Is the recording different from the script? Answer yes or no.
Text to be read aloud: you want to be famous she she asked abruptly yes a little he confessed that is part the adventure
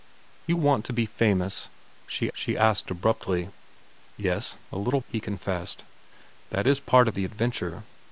no